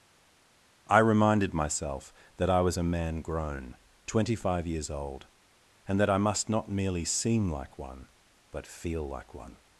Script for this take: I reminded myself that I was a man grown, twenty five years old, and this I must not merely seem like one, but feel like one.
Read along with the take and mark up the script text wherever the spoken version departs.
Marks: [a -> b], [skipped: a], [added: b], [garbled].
I reminded myself that I was a man grown, twenty five years old, and [this -> that] I must not merely seem like one, but feel like one.